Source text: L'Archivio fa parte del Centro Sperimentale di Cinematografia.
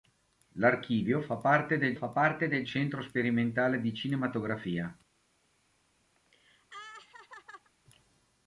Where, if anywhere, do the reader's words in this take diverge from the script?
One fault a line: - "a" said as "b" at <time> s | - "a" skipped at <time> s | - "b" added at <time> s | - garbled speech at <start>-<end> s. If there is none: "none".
- "fa parte del" added at 1.9 s